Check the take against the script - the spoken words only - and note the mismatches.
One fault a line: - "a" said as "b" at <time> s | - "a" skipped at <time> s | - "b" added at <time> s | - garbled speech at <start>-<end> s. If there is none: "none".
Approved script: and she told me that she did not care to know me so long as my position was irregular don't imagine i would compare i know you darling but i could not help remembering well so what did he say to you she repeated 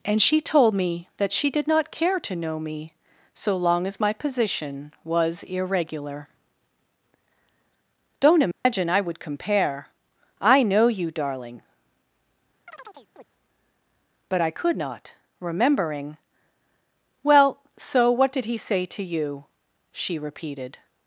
- "help" skipped at 15.1 s